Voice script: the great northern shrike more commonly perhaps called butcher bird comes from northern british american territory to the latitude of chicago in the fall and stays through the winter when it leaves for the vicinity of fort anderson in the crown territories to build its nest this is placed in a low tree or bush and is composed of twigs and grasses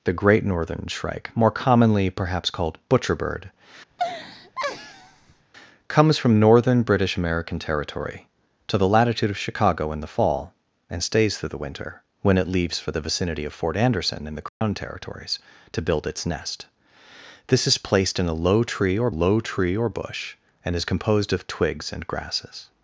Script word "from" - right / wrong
right